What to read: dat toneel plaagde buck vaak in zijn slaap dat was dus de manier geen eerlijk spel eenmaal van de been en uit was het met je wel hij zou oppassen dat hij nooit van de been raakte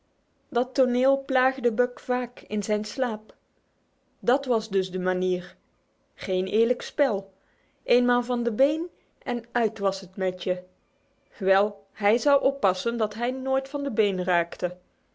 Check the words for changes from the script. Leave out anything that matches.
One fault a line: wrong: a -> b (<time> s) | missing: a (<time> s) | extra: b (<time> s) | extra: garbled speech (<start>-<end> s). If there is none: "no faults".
no faults